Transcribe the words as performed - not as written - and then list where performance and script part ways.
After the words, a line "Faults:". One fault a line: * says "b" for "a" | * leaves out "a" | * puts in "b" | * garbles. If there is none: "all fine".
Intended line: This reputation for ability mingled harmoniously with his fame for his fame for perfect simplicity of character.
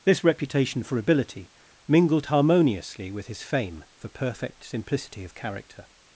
This reputation for ability mingled harmoniously with his fame for perfect simplicity of character.
Faults:
* leaves out "his fame for"